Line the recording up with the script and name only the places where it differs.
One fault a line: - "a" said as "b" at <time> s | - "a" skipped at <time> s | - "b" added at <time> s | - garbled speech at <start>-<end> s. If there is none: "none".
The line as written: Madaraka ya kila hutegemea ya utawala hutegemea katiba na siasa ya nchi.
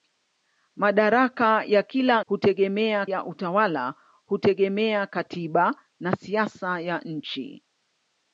none